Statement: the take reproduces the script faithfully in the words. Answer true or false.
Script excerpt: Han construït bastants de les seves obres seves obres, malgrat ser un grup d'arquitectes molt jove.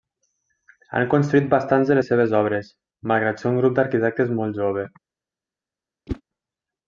false